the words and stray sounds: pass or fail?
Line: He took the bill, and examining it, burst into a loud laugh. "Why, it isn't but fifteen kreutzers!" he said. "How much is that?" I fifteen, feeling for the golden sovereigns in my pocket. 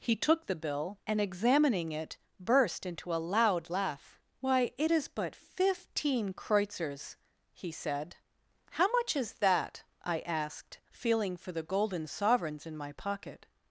fail